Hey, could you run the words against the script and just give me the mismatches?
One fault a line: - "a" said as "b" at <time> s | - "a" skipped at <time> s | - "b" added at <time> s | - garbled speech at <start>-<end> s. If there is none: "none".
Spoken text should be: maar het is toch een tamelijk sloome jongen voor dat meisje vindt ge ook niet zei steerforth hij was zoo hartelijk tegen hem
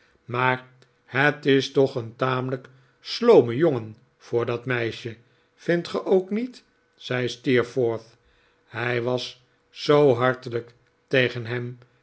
none